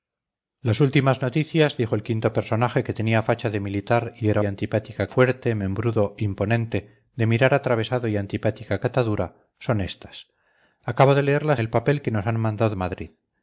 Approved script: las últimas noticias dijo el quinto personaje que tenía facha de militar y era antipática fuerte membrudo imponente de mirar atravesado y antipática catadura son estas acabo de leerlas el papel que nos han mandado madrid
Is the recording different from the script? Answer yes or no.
no